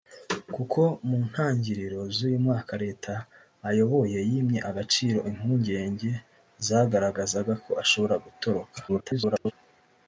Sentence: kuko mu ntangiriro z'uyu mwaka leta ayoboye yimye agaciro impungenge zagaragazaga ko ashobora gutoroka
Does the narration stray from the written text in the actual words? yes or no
yes